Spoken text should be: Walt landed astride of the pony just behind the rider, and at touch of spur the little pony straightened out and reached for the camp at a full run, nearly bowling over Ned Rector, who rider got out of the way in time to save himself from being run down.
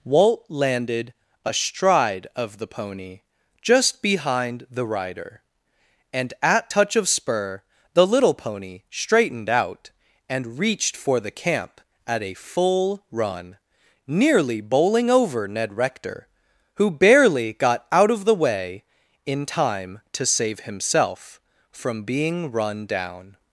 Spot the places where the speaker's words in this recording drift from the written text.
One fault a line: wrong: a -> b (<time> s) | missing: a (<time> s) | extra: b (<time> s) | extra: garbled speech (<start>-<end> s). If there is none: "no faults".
wrong: rider -> barely (16.9 s)